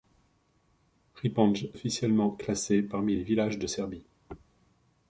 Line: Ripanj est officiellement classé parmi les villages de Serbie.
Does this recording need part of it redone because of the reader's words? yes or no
yes